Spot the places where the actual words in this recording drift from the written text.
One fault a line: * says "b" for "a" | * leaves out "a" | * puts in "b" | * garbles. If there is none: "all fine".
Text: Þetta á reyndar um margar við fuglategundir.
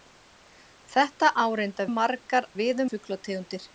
all fine